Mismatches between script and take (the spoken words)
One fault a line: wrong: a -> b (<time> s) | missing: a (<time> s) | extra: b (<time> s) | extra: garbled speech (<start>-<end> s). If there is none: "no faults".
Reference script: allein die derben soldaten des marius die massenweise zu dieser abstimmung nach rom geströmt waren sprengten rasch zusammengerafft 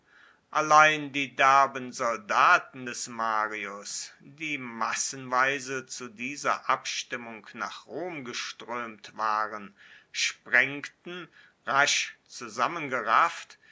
no faults